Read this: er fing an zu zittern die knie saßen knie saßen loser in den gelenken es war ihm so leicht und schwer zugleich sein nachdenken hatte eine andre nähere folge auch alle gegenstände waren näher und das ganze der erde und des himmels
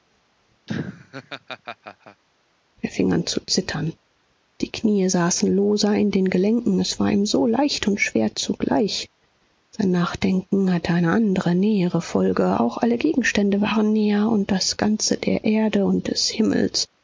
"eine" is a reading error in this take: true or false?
false